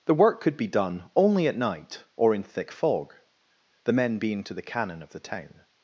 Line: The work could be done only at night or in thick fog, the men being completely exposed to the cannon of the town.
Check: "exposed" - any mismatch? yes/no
yes